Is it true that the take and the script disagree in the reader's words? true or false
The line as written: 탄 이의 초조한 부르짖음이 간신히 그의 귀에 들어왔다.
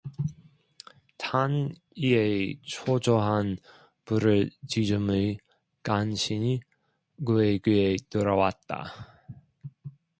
false